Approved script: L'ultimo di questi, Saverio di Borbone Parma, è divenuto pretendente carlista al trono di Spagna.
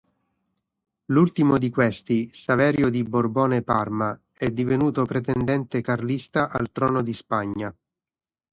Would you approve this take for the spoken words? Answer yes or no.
yes